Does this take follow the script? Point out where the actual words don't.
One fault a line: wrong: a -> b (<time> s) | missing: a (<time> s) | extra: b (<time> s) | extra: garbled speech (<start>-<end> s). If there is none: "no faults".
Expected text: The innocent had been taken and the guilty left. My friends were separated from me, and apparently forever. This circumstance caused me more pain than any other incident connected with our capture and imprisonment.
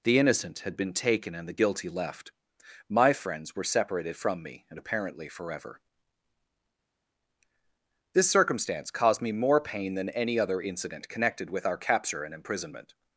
no faults